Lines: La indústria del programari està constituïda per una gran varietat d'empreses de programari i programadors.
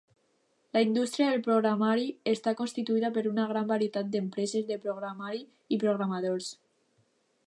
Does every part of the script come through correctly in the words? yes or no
yes